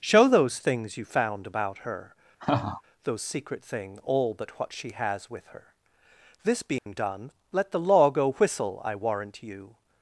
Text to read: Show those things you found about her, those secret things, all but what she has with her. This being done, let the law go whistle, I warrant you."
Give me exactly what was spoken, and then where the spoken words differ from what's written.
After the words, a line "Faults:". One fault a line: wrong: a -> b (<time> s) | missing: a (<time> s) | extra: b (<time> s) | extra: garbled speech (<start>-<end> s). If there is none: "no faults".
Show those things you found about her, those secret thing, all but what she has with her. This being done, let the law go whistle, I warrant you."
Faults:
wrong: things -> thing (3.6 s)